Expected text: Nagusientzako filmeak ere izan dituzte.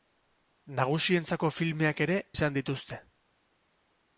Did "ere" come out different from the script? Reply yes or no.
no